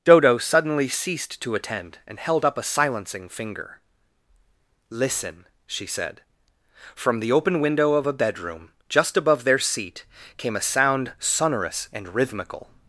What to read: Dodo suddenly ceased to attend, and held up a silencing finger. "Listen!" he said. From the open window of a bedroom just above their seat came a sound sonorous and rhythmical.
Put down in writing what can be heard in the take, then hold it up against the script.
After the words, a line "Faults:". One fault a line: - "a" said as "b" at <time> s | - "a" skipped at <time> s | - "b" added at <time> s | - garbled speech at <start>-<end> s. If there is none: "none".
Dodo suddenly ceased to attend, and held up a silencing finger. "Listen!" she said. From the open window of a bedroom just above their seat came a sound sonorous and rhythmical.
Faults:
- "he" said as "she" at 5.7 s